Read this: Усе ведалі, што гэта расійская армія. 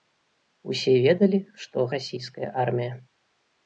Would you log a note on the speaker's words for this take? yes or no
yes